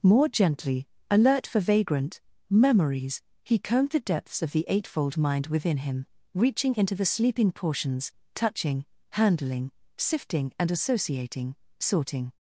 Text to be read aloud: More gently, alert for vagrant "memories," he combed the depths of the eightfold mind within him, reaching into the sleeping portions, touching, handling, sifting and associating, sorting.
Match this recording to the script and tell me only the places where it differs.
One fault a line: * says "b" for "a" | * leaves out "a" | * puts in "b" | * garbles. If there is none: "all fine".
all fine